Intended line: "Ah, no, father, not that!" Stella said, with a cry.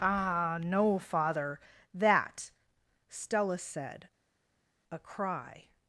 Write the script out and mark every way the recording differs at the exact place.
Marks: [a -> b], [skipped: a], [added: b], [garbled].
"Ah, no, father, [skipped: not] that!" Stella said, [skipped: with] a cry.